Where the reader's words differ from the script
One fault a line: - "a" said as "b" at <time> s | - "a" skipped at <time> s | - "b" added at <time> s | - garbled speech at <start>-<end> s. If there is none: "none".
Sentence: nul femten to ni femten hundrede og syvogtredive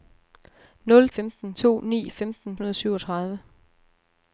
none